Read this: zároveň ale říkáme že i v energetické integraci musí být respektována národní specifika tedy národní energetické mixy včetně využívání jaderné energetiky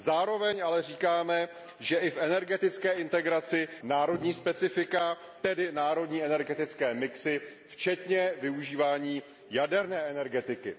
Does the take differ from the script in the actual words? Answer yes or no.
yes